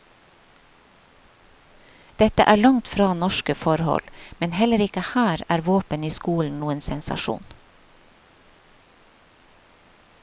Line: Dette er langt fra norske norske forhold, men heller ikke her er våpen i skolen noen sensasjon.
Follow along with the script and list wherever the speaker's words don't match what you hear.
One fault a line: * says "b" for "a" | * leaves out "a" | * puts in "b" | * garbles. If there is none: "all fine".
* leaves out "norske"